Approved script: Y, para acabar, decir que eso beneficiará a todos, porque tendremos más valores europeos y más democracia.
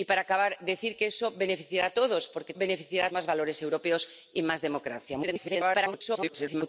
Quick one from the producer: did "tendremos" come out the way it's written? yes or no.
no